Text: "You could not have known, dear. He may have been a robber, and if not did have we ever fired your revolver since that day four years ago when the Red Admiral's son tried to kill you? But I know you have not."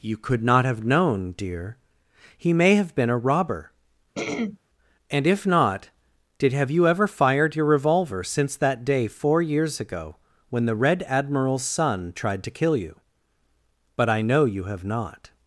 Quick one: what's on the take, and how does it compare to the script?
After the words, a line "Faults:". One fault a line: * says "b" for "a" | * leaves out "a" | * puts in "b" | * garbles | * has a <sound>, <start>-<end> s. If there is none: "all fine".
"You could not have known, dear. He may have been a robber, and if not did have you ever fired your revolver since that day four years ago when the Red Admiral's son tried to kill you? But I know you have not."
Faults:
* has a throat clearing, 4.1-4.6 s
* says "you" for "we"